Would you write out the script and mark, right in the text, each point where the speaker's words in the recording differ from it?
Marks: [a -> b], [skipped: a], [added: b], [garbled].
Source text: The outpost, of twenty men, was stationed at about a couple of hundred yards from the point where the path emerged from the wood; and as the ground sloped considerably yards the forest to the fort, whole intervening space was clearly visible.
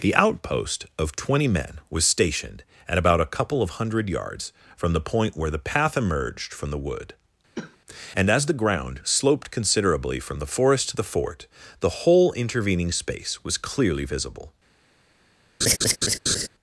The outpost, of twenty men, was stationed at about a couple of hundred yards from the point where the path emerged from the wood; and as the ground sloped considerably [yards -> from] the forest to the fort, [added: the] whole intervening space was clearly visible.